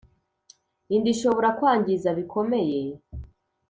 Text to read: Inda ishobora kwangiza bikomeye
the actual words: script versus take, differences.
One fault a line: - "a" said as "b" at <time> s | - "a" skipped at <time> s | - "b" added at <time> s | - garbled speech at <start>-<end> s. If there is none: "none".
none